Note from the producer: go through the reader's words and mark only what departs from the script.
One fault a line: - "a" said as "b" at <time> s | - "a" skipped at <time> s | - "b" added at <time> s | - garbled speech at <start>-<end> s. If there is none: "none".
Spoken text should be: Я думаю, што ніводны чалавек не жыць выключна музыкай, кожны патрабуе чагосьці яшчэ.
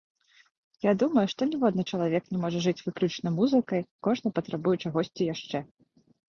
- "можа" added at 2.4 s